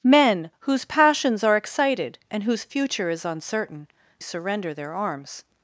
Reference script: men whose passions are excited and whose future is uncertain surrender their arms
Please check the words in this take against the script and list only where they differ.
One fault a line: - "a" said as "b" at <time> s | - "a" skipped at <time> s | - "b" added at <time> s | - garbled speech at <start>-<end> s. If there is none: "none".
none